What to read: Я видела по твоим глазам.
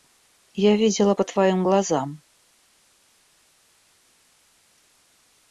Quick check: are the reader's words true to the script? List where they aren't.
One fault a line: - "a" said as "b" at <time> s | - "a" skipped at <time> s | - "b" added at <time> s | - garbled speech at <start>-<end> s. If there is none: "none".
none